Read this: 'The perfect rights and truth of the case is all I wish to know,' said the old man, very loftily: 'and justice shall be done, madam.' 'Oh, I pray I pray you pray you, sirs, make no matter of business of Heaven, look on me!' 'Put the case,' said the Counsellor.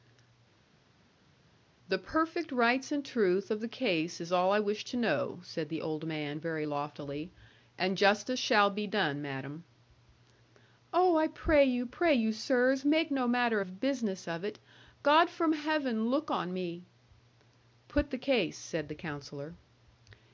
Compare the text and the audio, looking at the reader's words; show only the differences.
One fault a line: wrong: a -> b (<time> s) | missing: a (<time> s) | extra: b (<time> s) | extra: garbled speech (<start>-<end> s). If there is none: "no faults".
missing: I pray (11.6 s)
extra: it God from (14.5 s)